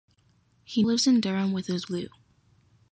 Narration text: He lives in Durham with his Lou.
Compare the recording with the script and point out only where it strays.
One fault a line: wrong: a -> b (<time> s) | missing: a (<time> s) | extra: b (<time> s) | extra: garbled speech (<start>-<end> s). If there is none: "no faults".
no faults